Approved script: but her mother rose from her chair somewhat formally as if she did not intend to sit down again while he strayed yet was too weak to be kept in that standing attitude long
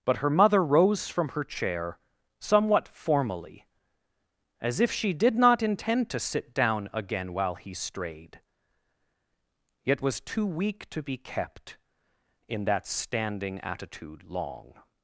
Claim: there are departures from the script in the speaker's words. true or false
false